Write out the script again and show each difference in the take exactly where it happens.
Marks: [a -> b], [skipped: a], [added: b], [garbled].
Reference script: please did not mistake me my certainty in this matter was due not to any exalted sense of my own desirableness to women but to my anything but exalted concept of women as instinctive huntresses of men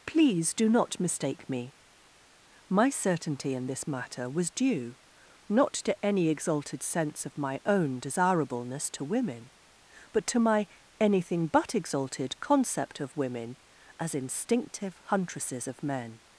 please [did -> do] not mistake me my certainty in this matter was due not to any exalted sense of my own desirableness to women but to my anything but exalted concept of women as instinctive huntresses of men